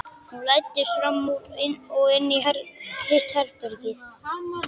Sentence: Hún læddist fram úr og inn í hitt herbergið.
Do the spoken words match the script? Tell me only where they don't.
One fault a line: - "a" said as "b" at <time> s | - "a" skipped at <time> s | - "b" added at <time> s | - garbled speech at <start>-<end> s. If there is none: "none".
none